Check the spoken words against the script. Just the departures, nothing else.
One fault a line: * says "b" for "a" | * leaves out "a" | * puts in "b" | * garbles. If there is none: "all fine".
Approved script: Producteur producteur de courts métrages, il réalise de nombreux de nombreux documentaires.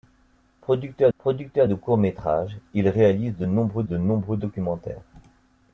all fine